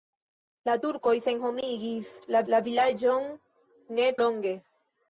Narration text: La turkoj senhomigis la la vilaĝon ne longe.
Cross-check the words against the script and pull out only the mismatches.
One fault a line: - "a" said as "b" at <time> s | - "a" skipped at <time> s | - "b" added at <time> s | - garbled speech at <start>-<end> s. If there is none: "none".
none